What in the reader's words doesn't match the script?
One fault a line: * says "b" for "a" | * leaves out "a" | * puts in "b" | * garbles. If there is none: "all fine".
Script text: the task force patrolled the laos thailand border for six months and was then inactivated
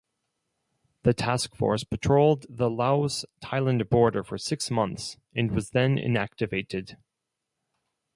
all fine